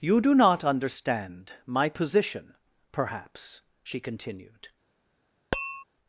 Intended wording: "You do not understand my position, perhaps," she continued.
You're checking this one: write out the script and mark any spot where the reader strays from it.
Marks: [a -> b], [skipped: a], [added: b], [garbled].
"You do not understand my position, perhaps," she continued.